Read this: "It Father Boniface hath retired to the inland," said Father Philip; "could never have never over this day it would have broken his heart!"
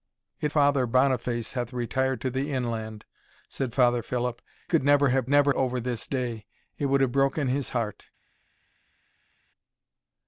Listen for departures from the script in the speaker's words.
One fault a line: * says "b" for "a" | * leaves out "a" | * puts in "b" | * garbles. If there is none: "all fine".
all fine